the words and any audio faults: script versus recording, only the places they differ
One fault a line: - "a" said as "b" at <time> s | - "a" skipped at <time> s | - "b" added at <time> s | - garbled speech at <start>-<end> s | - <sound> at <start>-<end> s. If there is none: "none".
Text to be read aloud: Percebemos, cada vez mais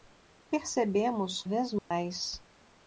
- "cada" skipped at 1.4 s
- dropout at 1.8-1.9 s